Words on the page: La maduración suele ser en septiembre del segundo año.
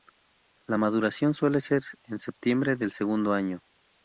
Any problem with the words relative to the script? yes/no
no